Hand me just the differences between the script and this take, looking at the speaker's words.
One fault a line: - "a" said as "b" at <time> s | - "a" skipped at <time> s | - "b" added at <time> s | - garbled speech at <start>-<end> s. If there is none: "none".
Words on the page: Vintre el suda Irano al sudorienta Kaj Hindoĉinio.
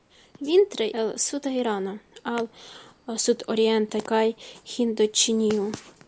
none